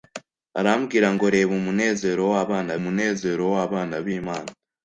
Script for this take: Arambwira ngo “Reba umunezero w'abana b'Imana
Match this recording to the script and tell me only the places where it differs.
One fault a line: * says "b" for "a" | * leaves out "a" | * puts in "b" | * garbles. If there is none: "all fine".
* puts in "umunezero w'abana"